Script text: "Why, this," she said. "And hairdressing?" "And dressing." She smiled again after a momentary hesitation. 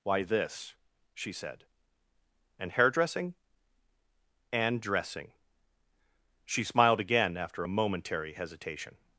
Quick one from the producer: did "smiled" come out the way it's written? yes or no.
yes